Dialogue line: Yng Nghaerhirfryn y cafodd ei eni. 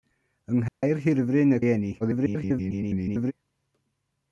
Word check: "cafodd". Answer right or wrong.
wrong